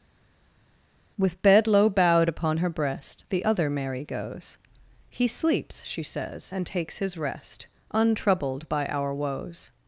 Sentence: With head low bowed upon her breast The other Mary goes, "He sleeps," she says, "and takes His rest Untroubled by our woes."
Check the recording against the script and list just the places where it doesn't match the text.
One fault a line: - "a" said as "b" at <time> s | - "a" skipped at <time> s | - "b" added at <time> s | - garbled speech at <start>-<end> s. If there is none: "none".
- "head" said as "bed" at 1.4 s